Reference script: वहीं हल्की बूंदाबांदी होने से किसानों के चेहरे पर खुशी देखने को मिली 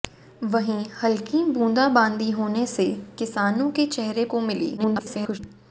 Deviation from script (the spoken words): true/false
true